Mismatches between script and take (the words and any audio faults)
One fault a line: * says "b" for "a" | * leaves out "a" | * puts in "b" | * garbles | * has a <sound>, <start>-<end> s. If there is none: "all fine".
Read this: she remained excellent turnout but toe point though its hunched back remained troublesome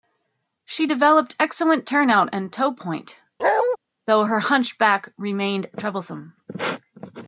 * says "developed" for "remained"
* says "and" for "but"
* has a bark, 3.4-3.8 s
* says "her" for "its"